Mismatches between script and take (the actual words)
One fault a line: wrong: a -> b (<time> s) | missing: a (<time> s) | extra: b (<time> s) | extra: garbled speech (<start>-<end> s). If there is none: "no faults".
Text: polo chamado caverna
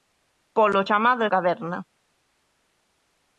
no faults